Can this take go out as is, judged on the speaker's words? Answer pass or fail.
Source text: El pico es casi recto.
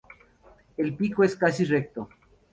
pass